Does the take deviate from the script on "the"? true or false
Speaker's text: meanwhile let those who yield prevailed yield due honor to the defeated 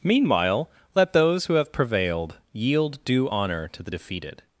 false